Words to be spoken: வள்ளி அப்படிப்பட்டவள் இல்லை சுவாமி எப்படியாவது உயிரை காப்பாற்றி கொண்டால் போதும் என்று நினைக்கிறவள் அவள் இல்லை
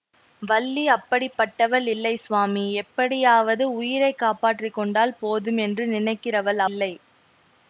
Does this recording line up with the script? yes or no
no